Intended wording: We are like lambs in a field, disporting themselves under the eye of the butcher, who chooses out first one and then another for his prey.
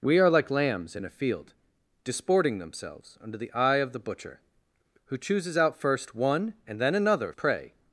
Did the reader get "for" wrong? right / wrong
wrong